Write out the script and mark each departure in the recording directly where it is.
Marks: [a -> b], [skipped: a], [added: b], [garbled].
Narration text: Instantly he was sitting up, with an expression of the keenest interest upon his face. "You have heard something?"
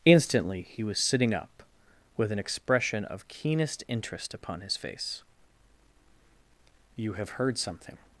Instantly he was sitting up, with an expression of [skipped: the] keenest interest upon his face. "You have heard something?"